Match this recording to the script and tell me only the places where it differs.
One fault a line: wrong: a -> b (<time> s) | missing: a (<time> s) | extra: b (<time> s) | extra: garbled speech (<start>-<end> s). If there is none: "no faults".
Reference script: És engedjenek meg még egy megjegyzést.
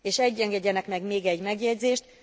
no faults